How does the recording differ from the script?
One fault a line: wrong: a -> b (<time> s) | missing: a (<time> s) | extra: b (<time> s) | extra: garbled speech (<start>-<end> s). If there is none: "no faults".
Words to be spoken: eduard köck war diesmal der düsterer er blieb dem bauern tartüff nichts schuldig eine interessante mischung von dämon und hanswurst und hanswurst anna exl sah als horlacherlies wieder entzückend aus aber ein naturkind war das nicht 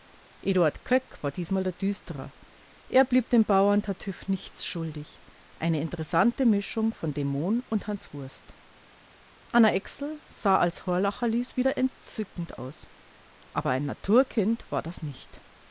missing: und hanswurst (8.6 s)